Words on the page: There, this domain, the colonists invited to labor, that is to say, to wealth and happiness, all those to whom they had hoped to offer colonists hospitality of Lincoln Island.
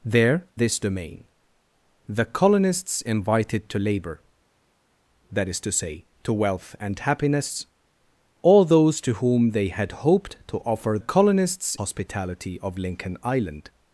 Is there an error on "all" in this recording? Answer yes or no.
no